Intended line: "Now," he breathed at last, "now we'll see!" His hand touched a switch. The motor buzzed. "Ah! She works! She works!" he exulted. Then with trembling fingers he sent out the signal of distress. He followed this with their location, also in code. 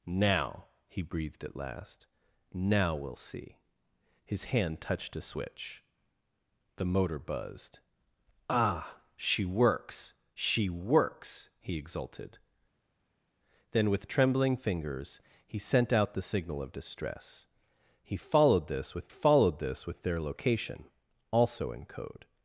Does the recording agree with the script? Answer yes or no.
no